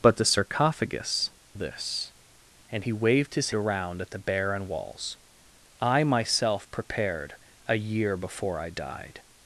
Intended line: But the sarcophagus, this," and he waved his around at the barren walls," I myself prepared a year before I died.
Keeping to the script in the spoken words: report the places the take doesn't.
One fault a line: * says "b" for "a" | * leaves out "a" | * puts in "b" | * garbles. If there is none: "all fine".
all fine